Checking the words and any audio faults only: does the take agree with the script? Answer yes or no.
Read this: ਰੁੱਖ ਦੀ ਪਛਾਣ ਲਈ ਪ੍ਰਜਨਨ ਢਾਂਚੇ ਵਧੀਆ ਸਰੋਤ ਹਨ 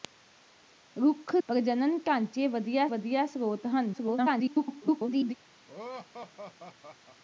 no